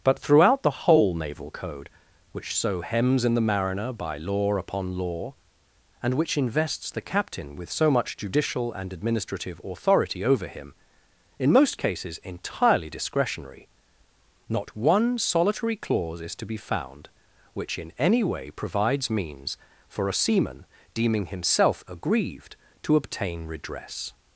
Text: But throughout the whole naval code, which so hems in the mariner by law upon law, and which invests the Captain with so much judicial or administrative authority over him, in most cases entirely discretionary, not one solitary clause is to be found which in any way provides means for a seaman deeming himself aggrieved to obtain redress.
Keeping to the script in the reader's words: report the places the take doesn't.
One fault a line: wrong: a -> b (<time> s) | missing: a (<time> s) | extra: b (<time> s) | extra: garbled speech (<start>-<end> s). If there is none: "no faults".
wrong: or -> and (8.7 s)